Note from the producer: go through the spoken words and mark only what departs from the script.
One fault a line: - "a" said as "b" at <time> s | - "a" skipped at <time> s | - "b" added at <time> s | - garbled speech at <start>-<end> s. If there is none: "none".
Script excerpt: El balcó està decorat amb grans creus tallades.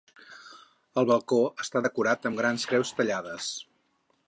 none